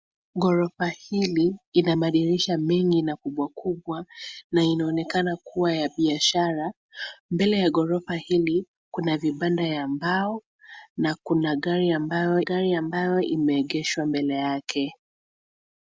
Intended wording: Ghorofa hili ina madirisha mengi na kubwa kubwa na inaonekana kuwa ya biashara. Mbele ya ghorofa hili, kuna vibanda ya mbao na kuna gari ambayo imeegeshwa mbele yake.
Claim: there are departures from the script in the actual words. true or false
true